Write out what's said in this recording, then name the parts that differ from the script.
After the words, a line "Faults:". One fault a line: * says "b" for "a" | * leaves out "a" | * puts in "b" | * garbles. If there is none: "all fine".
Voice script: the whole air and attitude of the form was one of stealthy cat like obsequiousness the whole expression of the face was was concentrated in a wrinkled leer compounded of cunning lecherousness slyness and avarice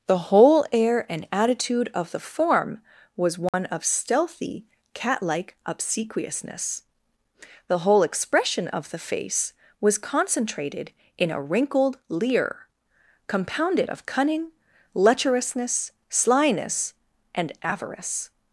the whole air and attitude of the form was one of stealthy cat like obsequiousness the whole expression of the face was concentrated in a wrinkled leer compounded of cunning lecherousness slyness and avarice
Faults:
* leaves out "was"